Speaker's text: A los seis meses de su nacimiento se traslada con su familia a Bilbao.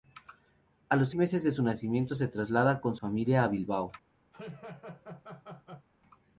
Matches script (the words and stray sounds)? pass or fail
fail